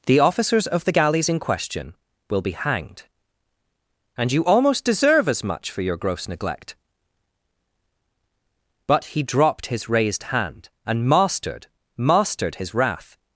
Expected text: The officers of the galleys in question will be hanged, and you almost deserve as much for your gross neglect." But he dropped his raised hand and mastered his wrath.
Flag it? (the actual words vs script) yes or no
yes